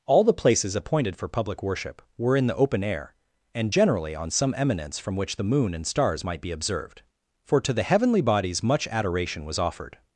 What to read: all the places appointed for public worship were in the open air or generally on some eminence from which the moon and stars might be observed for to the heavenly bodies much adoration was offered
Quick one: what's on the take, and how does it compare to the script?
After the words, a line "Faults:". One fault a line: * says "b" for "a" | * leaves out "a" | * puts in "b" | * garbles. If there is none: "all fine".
all the places appointed for public worship were in the open air and generally on some eminence from which the moon and stars might be observed for to the heavenly bodies much adoration was offered
Faults:
* says "and" for "or"